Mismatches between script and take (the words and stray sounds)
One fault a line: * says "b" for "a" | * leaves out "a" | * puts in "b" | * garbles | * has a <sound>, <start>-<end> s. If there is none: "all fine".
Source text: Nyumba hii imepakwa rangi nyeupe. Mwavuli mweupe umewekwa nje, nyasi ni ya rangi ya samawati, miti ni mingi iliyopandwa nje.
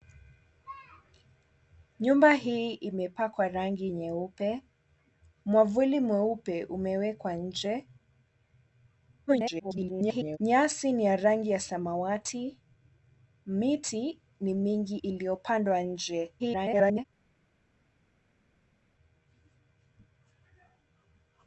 * garbles
* garbles